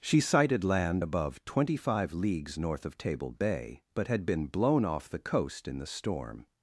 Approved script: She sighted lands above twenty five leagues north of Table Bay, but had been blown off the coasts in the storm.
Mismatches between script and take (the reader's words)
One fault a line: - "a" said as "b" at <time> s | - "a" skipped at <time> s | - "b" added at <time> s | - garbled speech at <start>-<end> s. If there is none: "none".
- "lands" said as "land" at 0.6 s
- "coasts" said as "coast" at 5.2 s